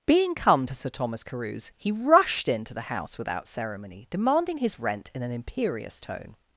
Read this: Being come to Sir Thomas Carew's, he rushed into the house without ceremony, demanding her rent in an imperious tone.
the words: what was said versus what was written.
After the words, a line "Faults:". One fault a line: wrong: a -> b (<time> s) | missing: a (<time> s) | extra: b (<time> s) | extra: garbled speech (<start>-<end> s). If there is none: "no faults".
Being come to Sir Thomas Carew's, he rushed into the house without ceremony, demanding his rent in an imperious tone.
Faults:
wrong: her -> his (4.6 s)